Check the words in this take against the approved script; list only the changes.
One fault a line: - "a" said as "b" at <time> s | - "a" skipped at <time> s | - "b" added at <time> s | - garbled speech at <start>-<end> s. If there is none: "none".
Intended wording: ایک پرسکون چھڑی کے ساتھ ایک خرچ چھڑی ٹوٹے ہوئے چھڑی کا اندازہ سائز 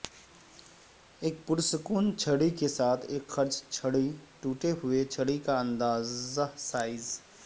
none